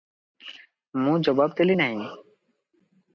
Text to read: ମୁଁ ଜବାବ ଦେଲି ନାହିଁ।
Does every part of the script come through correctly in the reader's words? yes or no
yes